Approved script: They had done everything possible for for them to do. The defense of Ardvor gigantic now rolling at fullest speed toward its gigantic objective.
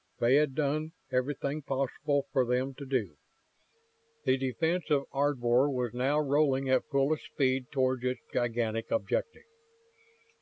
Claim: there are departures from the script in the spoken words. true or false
true